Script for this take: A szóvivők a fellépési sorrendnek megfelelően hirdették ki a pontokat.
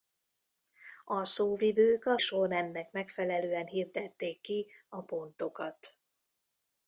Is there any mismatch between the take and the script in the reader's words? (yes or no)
yes